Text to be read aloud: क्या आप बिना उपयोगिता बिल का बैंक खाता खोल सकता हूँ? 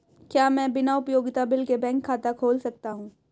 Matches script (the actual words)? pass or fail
fail